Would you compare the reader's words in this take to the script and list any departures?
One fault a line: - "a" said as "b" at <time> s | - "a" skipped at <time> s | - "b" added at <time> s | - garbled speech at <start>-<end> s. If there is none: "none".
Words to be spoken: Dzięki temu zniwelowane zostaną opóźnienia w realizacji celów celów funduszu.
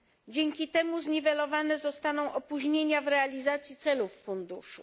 - "celów" skipped at 4.1 s